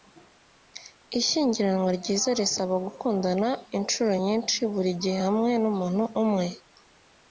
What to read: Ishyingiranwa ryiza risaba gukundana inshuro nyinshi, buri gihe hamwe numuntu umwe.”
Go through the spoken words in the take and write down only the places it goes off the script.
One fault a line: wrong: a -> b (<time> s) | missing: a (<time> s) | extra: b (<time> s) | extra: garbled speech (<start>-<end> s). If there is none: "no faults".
no faults